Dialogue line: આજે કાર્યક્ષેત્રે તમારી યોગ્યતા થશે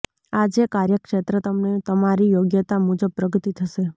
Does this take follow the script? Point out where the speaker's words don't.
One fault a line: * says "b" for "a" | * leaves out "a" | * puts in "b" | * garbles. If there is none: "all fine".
* puts in "તમને"
* puts in "મુજબ પ્રગતિ"